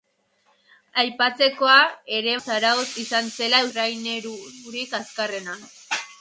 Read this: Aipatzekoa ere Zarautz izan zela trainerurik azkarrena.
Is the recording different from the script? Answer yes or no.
no